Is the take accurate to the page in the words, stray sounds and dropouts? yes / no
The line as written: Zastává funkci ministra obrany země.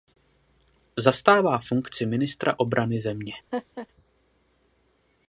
no